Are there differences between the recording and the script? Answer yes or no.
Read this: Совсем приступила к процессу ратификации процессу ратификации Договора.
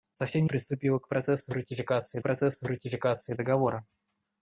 no